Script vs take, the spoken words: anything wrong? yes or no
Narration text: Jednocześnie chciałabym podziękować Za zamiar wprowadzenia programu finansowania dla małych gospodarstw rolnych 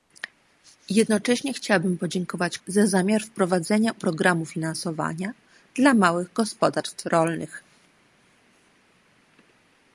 no